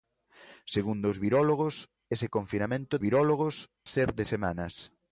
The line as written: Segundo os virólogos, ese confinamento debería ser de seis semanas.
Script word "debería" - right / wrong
wrong